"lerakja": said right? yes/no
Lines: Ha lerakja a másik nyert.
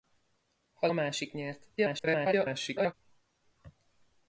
no